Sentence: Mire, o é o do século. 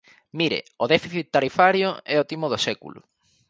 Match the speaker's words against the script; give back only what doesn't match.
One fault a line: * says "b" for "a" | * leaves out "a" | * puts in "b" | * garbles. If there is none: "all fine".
* puts in "déficit tarifario"
* puts in "timo"